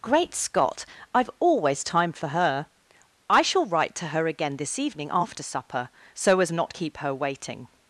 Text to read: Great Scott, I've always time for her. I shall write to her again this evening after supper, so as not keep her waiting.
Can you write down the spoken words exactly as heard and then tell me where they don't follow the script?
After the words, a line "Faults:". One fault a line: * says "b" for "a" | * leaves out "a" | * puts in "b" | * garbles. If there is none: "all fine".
Great Scott, I've always time for her. I shall write to her again this evening after supper, so as not keep her waiting.
Faults:
all fine